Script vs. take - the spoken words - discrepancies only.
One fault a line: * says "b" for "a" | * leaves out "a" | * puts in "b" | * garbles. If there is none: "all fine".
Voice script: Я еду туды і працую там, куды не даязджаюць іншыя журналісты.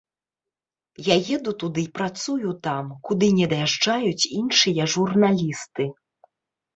all fine